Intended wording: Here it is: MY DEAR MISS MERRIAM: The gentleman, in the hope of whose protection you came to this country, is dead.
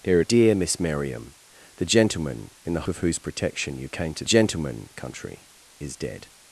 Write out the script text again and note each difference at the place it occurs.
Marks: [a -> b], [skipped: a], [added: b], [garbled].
Here it [skipped: is: MY] DEAR MISS MERRIAM: The gentleman, in the [skipped: hope] of whose protection you came to [this -> gentleman] country, is dead.